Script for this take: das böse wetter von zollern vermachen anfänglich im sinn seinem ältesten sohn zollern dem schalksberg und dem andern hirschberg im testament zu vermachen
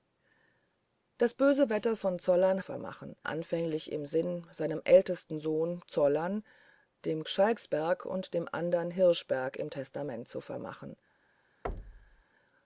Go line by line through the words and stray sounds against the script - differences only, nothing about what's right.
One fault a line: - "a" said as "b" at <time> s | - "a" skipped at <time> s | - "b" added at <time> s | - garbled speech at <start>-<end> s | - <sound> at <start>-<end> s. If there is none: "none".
- thud at 11.6-12.2 s